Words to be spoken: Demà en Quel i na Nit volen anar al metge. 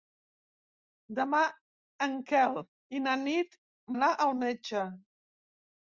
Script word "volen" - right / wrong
wrong